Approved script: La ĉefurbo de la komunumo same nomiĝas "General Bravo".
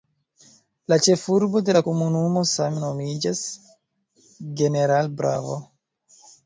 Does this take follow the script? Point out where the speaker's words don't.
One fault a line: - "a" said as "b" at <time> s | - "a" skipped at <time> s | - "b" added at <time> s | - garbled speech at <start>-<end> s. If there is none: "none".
none